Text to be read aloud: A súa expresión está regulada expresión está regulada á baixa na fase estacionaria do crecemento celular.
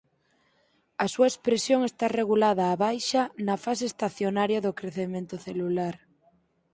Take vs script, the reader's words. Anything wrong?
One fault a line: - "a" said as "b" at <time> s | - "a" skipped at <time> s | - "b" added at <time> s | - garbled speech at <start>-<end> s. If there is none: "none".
- "expresión está regulada" skipped at 2.6 s